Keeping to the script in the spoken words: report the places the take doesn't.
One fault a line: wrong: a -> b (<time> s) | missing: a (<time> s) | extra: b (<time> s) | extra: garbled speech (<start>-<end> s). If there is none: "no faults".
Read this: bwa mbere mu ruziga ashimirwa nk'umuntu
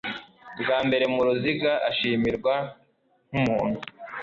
no faults